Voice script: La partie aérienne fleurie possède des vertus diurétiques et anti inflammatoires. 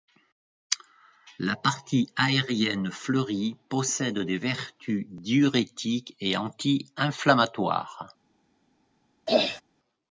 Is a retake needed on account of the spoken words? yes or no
no